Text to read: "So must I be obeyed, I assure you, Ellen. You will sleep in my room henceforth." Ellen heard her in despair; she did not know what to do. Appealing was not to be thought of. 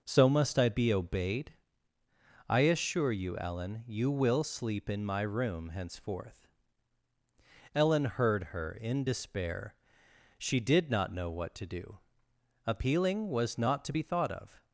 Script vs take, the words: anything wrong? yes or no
no